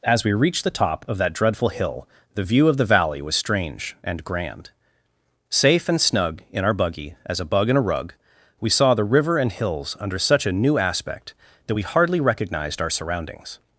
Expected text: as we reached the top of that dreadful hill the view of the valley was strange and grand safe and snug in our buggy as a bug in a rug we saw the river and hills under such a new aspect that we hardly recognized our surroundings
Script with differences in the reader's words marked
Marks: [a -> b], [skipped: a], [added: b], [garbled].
as we reached the top of that dreadful hill the view of the valley was strange and grand safe and snug in our buggy as a bug in a rug we saw the river and hills under such a new aspect that we hardly recognized our surroundings